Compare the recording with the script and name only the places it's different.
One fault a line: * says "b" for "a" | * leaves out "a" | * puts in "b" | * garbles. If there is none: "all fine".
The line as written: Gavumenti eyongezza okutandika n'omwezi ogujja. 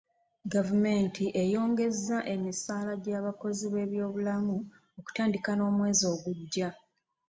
* puts in "emisaala gy'abakozi b'ebyobulamu"